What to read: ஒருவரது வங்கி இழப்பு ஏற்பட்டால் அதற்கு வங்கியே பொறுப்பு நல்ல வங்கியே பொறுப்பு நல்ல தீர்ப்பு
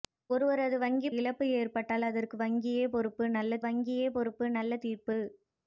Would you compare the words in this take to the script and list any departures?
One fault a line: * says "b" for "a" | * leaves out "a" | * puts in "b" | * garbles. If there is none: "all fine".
all fine